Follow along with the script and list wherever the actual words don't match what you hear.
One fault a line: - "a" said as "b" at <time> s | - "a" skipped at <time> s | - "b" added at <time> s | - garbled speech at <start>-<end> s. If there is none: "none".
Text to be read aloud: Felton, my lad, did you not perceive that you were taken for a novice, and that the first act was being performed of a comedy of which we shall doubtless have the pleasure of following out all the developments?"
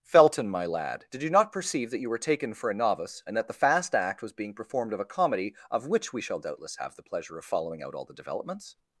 - "first" said as "fast" at 3.5 s